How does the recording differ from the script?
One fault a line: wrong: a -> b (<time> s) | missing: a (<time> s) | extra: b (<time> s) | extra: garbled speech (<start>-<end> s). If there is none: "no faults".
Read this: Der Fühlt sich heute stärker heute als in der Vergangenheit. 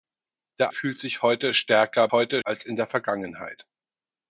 no faults